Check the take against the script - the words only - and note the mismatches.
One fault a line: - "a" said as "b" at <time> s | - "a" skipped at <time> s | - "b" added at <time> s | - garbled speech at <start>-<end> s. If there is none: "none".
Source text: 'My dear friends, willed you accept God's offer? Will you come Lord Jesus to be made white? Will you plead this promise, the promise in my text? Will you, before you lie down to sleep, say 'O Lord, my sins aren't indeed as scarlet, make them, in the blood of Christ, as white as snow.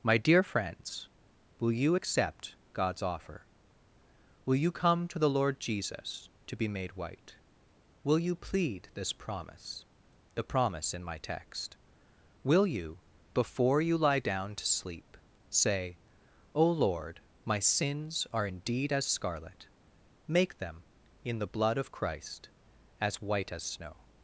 - "willed" said as "will" at 1.6 s
- "to the" added at 5.1 s
- "aren't" said as "are" at 18.3 s